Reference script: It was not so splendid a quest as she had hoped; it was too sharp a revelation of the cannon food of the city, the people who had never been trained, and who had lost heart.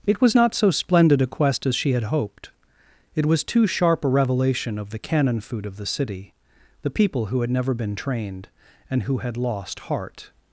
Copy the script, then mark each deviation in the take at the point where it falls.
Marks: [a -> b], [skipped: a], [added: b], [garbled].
It was not so splendid a quest as she had hoped; it was too sharp a revelation of the cannon food of the city, the people who had never been trained, and who had lost heart.